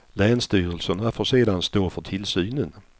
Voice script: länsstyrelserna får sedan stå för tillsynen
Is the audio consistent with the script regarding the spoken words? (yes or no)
yes